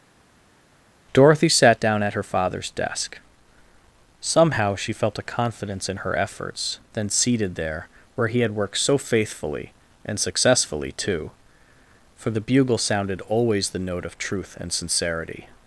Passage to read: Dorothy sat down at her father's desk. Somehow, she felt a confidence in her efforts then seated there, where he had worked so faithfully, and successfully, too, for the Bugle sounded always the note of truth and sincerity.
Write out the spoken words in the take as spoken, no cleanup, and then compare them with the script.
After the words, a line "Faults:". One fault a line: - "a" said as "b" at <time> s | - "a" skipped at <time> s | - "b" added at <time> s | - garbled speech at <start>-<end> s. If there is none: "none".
Dorothy sat down at her father's desk. Somehow, she felt a confidence in her efforts then seated there, where he had worked so faithfully, and successfully, too, for the Bugle sounded always the note of truth and sincerity.
Faults:
none